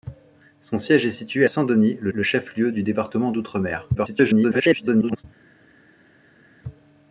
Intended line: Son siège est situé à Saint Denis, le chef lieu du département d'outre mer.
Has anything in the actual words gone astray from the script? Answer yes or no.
yes